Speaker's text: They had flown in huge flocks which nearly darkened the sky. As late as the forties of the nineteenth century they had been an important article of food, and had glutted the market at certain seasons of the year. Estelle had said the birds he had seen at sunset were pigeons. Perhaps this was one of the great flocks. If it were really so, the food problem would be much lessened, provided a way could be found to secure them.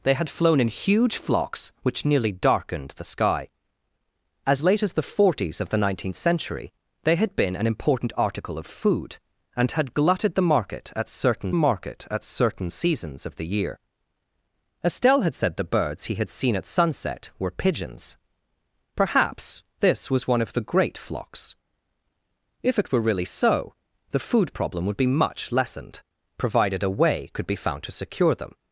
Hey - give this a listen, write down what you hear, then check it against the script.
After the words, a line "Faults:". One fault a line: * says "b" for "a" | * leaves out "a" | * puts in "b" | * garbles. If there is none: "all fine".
They had flown in huge flocks which nearly darkened the sky. As late as the forties of the nineteenth century they had been an important article of food, and had glutted the market at certain market at certain seasons of the year. Estelle had said the birds he had seen at sunset were pigeons. Perhaps this was one of the great flocks. If it were really so, the food problem would be much lessened, provided a way could be found to secure them.
Faults:
* puts in "market at certain"